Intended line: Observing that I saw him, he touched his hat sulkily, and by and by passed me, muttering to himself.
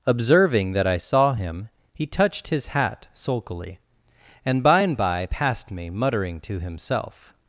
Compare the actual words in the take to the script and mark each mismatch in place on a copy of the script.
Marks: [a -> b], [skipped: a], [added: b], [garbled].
Observing that I saw him, he touched his hat sulkily, and by and by passed me, muttering to himself.